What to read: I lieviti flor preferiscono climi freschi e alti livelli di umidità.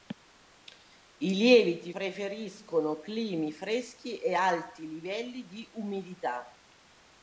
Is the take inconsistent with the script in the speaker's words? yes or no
yes